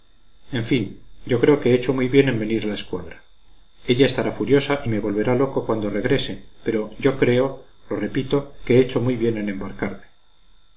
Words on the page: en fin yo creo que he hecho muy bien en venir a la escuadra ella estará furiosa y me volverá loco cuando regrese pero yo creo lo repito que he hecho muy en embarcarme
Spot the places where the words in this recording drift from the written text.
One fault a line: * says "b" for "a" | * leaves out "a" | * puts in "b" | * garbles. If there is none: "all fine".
* puts in "bien"